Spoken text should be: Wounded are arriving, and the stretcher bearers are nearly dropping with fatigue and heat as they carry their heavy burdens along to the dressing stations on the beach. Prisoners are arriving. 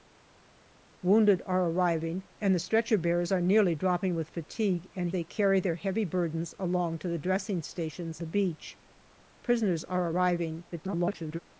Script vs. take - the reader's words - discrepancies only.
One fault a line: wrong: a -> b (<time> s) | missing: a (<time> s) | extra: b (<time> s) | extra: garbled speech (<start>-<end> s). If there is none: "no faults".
missing: heat as (5.1 s)
missing: on (8.2 s)
extra: garbled speech (10.7-11.4 s)